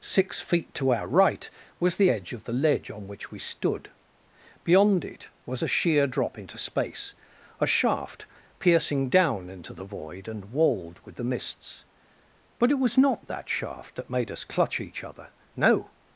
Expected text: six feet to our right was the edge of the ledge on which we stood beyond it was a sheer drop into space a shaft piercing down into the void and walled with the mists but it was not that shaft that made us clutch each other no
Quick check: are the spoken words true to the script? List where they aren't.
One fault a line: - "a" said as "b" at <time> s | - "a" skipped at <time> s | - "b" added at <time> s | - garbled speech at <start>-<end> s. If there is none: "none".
none